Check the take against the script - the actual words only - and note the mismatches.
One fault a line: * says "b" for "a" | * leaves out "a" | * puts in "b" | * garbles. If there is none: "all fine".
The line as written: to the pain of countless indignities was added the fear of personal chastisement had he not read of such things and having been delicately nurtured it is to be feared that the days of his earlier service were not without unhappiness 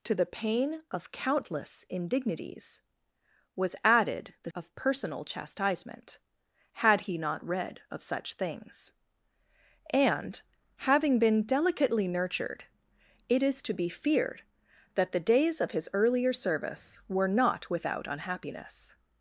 * leaves out "fear"